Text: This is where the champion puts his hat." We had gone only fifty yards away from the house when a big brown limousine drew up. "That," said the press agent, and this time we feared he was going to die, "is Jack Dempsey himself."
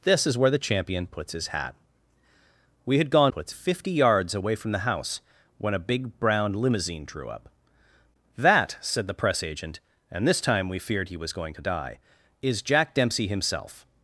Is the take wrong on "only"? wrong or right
wrong